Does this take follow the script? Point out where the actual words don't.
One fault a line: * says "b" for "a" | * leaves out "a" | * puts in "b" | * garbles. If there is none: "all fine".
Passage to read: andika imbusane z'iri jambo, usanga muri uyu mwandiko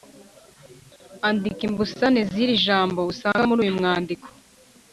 all fine